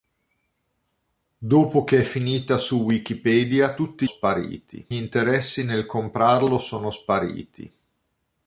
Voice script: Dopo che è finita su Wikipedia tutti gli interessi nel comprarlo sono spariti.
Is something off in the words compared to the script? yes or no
yes